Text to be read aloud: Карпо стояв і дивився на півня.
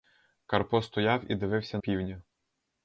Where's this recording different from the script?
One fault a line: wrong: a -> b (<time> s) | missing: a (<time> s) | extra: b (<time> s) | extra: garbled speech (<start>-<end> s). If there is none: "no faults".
missing: на (1.8 s)